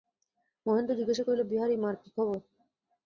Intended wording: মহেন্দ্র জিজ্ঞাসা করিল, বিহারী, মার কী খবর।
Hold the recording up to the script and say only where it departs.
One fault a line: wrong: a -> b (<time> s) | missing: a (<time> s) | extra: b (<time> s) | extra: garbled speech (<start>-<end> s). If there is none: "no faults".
no faults